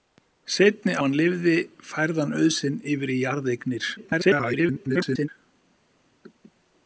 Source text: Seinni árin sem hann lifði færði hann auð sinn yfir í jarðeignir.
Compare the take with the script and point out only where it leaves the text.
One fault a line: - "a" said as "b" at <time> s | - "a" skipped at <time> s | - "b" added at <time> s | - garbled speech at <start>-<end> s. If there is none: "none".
- "árin sem" skipped at 0.9 s
- garbled speech at 4.0-5.3 s